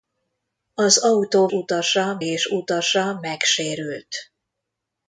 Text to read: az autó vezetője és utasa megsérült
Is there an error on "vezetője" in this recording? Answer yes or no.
yes